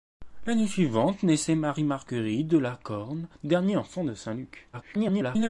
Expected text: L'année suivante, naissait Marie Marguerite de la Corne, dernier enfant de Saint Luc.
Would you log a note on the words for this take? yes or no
yes